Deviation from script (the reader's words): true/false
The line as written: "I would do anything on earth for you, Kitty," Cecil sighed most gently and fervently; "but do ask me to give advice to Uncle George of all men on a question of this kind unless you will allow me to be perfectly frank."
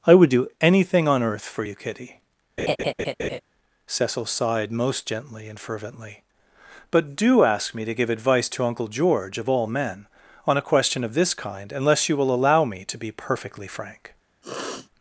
false